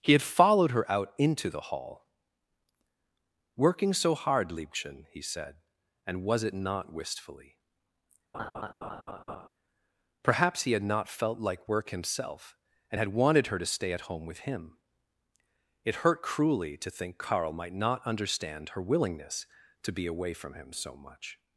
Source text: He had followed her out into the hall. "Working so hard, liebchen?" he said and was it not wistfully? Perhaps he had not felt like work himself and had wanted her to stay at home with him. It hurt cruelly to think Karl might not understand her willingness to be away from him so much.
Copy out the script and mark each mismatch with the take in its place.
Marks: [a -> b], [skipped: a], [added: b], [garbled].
He had followed her out into the hall. "Working so hard, liebchen?" he said and was it not wistfully? Perhaps he had not felt like work himself and had wanted her to stay at home with him. It hurt cruelly to think Karl might not understand her willingness to be away from him so much.